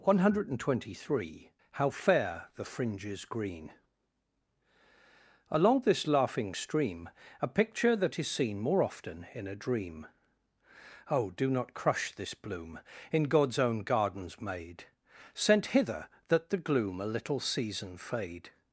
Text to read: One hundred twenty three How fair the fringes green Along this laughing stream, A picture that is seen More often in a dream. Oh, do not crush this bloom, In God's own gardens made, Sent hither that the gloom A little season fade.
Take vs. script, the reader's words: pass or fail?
pass